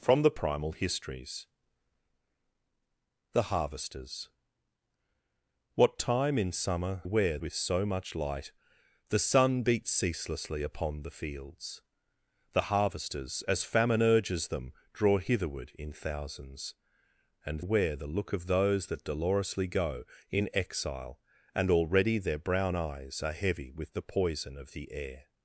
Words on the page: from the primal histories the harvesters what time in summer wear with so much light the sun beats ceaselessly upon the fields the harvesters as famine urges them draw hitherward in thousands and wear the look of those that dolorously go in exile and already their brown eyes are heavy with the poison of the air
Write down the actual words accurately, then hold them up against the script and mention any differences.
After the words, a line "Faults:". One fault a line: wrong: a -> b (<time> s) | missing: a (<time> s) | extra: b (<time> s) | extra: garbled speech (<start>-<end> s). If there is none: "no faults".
from the primal histories the harvesters what time in summer wear with so much light the sun beats ceaselessly upon the fields the harvesters as famine urges them draw hitherward in thousands and wear the look of those that dolorously go in exile and already their brown eyes are heavy with the poison of the air
Faults:
no faults